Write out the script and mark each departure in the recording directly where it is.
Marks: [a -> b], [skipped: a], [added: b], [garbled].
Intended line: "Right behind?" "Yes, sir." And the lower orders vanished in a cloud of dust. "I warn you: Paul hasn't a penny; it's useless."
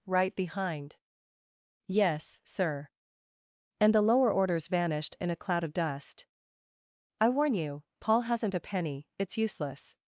"Right behind?" "Yes, sir." And the lower orders vanished in a cloud of dust. "I warn you: Paul hasn't a penny; it's useless."